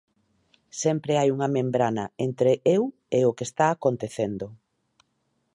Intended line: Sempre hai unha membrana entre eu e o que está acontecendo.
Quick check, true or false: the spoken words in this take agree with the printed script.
true